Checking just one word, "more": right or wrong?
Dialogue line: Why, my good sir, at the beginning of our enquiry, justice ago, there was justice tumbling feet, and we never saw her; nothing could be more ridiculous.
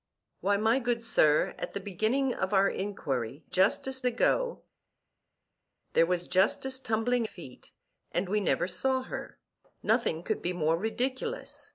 right